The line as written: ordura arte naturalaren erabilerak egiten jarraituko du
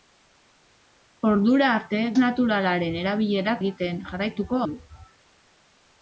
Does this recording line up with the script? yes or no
yes